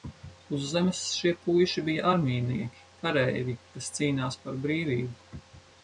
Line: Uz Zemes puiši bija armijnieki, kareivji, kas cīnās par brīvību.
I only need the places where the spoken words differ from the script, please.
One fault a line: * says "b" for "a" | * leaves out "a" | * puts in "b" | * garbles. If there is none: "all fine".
* puts in "šie"